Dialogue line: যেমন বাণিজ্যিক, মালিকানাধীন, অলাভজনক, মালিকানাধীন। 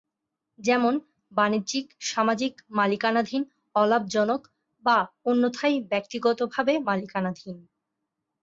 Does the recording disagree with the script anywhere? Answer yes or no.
yes